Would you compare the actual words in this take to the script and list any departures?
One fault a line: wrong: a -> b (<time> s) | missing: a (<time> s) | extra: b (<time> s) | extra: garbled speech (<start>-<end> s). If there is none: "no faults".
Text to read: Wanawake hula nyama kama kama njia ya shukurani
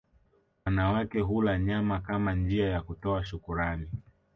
missing: kama (2.4 s)
extra: kutoa (2.8 s)